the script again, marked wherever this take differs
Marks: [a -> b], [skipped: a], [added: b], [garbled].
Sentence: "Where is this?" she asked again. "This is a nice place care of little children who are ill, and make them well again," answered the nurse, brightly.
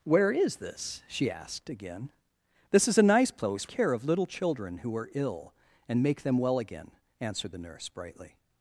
"Where is this?" she asked again. "This is a nice place care of little children who are ill, and make them well again," answered the nurse, brightly.